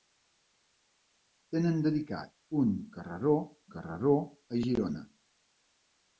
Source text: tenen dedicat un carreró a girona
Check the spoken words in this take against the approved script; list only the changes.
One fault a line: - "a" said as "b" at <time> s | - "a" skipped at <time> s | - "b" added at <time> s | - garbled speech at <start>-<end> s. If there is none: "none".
- "carreró" added at 3.7 s